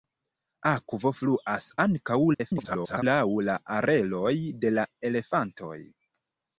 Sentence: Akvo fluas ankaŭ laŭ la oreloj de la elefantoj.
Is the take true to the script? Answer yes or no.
no